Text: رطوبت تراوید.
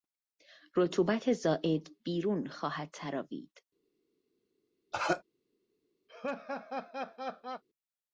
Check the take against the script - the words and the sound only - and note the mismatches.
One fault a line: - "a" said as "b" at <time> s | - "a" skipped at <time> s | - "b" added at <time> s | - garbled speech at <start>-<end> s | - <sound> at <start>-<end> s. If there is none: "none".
- "زائد بیرون خواهد" added at 1.3 s
- cough at 4.9-5.2 s
- laugh at 6.1-7.6 s